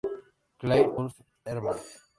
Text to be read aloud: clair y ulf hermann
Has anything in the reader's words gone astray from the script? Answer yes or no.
yes